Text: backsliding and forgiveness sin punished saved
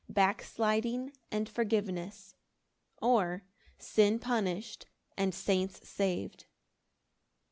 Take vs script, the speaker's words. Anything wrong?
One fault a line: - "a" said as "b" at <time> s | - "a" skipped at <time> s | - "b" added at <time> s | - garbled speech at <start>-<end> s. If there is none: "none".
- "or" added at 3.0 s
- "and saints" added at 5.2 s